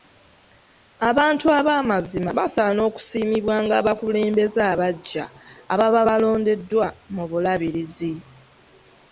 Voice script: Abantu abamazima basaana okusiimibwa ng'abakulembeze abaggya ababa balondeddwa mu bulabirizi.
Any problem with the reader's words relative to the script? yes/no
no